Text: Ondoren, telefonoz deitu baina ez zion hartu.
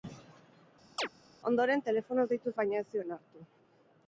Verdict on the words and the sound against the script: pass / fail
fail